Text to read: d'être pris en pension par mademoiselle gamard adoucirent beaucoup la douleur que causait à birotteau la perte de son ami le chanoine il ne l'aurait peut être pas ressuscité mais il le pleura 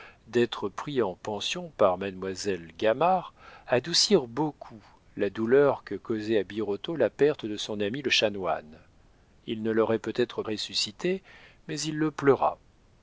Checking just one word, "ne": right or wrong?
right